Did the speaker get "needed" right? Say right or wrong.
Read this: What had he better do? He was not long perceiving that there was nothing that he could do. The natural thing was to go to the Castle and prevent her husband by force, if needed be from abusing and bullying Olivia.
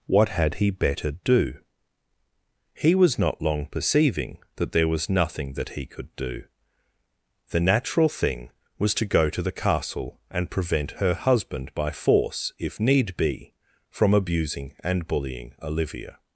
wrong